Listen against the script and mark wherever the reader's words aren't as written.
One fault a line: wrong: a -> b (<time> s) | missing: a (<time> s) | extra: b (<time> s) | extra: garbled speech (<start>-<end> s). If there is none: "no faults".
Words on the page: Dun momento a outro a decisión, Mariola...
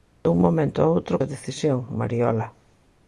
no faults